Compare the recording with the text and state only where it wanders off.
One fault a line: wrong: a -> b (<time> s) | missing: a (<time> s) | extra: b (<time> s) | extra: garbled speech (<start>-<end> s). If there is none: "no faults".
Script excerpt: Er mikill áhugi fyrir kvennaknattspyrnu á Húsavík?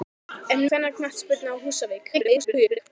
missing: mikill áhugi fyrir (0.6 s)
extra: garbled speech (2.1-2.8 s)